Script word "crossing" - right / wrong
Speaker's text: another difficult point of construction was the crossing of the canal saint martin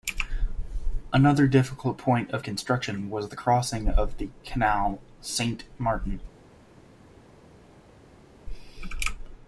right